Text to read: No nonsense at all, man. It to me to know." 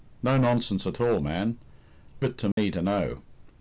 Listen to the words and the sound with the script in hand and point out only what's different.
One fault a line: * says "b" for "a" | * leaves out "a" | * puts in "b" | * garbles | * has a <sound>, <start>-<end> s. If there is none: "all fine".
* has a dropout, 2.5-2.6 s